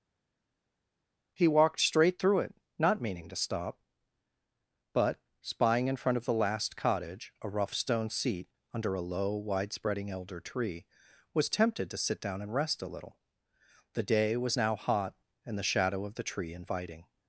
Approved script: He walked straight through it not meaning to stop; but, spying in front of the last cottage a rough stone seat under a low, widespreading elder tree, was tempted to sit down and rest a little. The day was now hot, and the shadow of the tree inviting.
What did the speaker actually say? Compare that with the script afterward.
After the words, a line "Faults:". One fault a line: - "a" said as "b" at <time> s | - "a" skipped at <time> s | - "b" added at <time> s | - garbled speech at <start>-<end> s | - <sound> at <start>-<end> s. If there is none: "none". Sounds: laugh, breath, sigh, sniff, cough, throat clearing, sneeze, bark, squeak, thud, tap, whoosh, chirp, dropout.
He walked straight through it not meaning to stop; but, spying in front of the last cottage a rough stone seat under a low, widespreading elder tree, was tempted to sit down and rest a little. The day was now hot, and the shadow of the tree inviting.
Faults:
none